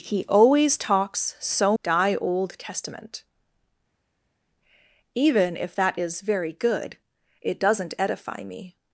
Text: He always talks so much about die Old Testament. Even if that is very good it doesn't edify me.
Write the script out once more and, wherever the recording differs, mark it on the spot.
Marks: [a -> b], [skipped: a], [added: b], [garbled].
He always talks so [skipped: much about] die Old Testament. Even if that is very good it doesn't edify me.